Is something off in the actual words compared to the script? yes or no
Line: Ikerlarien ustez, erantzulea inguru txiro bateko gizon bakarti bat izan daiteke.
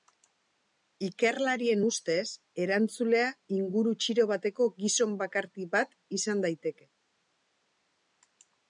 no